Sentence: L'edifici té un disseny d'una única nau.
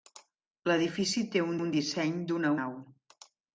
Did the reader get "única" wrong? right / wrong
wrong